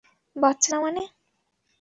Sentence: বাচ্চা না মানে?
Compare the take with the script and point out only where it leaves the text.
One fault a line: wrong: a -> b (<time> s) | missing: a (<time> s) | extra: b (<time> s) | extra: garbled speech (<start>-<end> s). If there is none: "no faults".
no faults